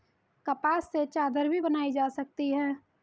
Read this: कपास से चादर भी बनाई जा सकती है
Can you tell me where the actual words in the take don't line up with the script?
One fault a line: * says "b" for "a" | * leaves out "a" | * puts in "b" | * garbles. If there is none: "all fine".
all fine